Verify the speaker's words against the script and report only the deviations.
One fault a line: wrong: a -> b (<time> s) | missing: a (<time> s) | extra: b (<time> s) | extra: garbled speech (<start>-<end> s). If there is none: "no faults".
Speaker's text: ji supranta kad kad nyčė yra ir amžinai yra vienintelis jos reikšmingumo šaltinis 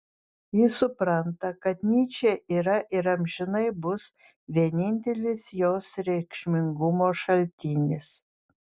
missing: kad (1.8 s)
wrong: yra -> bus (3.9 s)